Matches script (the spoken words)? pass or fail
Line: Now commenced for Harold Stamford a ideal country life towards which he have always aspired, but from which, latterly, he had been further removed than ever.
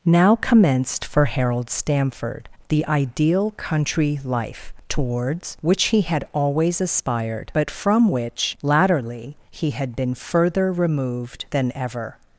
fail